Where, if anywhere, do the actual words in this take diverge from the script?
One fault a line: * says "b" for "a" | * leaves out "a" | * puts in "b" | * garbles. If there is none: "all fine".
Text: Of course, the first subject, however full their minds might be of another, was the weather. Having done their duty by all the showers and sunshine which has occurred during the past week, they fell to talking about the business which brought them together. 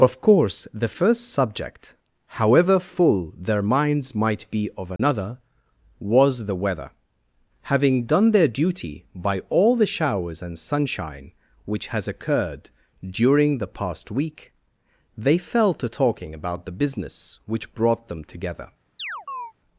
all fine